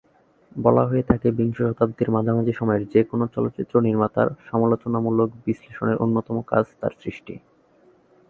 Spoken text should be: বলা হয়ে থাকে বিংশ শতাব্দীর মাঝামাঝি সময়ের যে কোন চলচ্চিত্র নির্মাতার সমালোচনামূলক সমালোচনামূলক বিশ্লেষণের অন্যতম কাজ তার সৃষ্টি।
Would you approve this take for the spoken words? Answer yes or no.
no